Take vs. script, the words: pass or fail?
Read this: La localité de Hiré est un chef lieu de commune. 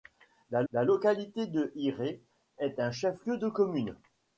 fail